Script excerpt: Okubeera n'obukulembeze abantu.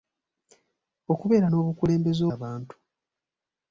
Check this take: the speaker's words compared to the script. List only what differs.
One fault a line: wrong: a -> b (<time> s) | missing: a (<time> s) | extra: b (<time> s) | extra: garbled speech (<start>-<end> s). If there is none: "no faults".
no faults